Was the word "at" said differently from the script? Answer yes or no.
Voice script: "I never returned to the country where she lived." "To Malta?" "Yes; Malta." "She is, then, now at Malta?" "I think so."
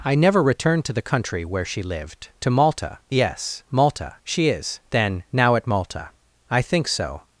no